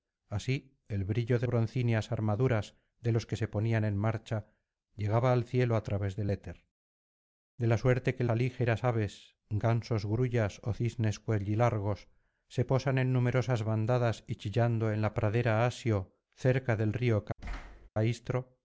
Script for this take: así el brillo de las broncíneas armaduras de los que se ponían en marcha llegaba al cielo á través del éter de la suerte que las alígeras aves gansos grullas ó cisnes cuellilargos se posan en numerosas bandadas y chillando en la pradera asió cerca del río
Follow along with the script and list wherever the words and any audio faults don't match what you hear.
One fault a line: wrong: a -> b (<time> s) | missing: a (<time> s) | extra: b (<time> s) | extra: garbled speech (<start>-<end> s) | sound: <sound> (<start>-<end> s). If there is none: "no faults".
missing: las (1.4 s)
missing: las (8.2 s)
sound: thud (17.4-17.9 s)